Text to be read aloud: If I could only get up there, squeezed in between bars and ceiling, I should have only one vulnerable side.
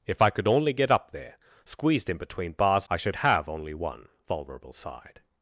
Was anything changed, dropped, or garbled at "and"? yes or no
yes